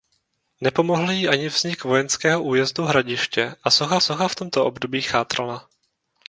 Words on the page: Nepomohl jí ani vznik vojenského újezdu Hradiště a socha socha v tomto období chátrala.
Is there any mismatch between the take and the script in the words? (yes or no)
no